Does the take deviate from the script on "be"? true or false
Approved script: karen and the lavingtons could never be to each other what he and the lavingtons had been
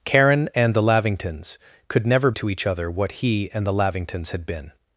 true